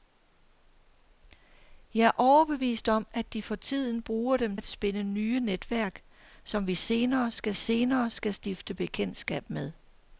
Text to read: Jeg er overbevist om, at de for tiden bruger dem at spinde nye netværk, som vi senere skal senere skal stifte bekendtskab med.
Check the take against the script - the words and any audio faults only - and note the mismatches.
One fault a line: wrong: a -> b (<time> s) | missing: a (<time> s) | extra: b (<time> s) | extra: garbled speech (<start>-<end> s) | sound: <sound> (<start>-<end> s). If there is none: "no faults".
no faults